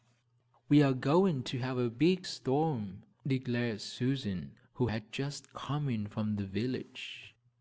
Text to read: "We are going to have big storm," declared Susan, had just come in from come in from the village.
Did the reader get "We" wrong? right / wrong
right